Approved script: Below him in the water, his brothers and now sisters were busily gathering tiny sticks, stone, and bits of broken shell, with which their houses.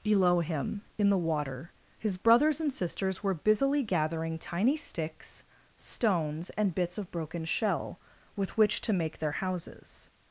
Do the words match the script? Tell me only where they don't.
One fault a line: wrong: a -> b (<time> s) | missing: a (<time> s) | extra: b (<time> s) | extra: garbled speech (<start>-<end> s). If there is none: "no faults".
missing: now (2.7 s)
wrong: stone -> stones (5.8 s)
extra: to make (8.8 s)